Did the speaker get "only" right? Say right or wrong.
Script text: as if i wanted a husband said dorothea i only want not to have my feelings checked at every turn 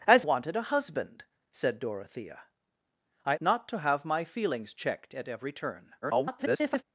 wrong